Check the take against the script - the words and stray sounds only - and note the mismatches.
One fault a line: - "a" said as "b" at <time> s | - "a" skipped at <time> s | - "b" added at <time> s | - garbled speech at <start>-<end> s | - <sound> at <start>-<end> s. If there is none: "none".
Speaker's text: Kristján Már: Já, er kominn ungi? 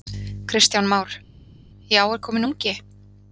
none